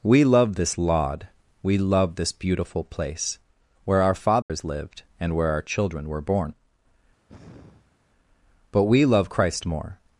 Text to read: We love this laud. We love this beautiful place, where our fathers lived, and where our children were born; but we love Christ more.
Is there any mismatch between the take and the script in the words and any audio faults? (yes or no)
yes